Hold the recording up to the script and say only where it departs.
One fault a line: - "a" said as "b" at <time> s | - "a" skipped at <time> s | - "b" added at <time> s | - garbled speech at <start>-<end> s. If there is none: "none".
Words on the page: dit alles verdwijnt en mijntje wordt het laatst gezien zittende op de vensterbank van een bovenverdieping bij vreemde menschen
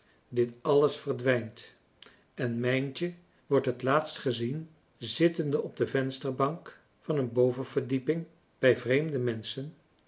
none